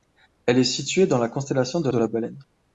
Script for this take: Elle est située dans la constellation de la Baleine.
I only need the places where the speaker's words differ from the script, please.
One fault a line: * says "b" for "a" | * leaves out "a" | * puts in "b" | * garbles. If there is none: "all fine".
* puts in "de"